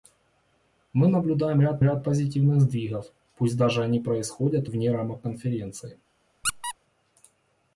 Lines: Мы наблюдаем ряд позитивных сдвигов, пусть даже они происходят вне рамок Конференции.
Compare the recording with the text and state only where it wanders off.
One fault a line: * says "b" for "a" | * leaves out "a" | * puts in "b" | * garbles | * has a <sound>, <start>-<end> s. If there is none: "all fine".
* puts in "ряд"
* has a squeak, 6.4-6.7 s